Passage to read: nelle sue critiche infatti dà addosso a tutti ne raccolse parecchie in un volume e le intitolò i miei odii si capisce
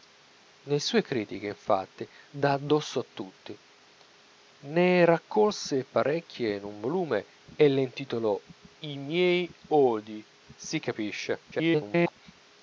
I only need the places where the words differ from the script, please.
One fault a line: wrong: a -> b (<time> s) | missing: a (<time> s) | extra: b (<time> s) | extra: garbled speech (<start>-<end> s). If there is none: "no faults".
extra: garbled speech (11.5-12.2 s)